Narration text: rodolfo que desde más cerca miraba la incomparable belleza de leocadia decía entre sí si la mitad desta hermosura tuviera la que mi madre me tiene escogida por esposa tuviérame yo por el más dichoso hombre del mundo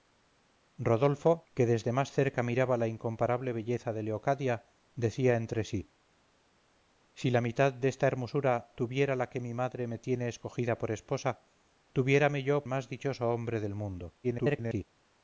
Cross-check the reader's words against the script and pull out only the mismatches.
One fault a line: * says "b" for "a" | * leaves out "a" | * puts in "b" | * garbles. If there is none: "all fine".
* leaves out "por el"
* garbles